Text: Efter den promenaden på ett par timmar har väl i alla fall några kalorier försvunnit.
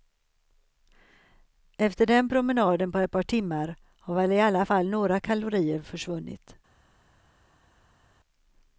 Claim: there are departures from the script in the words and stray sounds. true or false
false